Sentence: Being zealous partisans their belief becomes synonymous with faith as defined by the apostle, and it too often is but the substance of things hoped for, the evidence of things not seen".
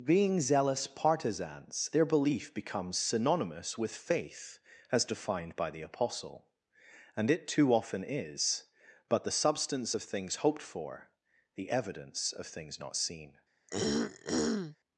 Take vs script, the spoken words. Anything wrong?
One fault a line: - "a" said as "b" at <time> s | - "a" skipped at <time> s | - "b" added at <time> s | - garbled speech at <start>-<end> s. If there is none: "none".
none